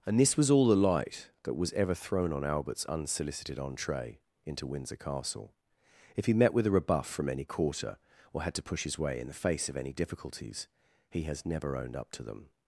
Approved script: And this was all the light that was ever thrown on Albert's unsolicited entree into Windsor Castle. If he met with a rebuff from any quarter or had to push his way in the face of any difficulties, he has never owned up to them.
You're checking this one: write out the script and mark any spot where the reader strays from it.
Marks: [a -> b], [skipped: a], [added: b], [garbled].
And this was all the light that was ever thrown on Albert's unsolicited entree into Windsor Castle. If he met with a rebuff from any quarter or had to push his way in the face of any difficulties, he has never owned up to them.